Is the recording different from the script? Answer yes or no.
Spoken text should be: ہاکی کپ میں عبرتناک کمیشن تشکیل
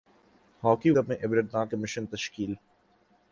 no